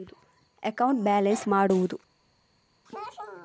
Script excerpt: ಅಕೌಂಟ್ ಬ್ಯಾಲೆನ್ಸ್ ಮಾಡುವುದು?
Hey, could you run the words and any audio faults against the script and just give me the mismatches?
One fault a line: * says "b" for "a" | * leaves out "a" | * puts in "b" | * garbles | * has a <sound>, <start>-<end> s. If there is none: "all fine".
all fine